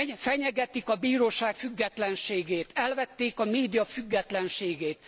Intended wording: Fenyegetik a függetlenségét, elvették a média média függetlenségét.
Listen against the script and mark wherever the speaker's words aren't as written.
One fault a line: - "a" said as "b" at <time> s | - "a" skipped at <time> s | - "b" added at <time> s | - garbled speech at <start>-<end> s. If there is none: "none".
- "bíróság" added at 0.9 s
- "média" skipped at 3.8 s